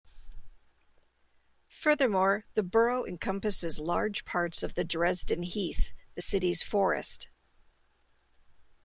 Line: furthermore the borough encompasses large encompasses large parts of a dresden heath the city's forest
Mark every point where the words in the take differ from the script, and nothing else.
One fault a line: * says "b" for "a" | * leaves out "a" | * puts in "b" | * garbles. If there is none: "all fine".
* leaves out "encompasses large"
* says "the" for "a"